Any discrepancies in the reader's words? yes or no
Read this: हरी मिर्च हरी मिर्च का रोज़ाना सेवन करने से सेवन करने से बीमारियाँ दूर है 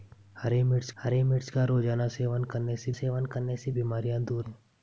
no